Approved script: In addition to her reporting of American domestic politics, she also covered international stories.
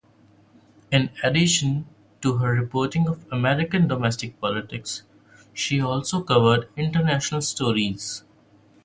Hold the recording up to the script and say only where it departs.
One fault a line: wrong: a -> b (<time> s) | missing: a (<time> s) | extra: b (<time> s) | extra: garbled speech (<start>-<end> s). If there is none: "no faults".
no faults